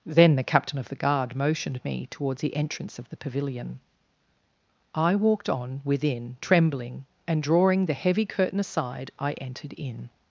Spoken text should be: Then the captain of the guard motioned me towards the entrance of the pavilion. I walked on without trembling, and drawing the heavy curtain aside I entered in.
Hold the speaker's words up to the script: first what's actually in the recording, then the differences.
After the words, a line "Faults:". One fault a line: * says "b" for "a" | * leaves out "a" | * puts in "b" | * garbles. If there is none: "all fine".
Then the captain of the guard motioned me towards the entrance of the pavilion. I walked on within trembling, and drawing the heavy curtain aside I entered in.
Faults:
* says "within" for "without"